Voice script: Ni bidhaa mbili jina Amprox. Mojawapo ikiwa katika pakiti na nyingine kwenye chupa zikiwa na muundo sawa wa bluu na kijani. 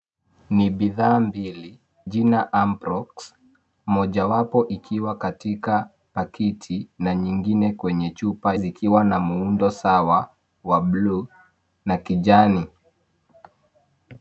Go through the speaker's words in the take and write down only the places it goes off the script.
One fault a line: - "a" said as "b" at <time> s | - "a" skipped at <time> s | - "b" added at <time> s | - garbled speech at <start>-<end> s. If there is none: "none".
none